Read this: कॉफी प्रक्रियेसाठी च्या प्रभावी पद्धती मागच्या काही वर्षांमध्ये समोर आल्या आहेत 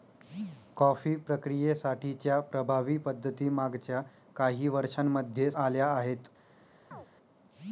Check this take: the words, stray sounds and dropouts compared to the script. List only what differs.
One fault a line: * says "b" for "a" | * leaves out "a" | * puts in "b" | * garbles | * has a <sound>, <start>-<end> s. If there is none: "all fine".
* leaves out "समोर"
* has a chirp, 6.9-7.1 s